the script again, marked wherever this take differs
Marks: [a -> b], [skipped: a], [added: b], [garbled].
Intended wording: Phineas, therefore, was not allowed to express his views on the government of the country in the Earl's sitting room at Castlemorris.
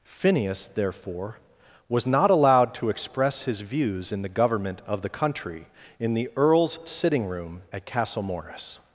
Phineas, therefore, was not allowed to express his views [on -> in] the government of the country in the Earl's sitting room at Castlemorris.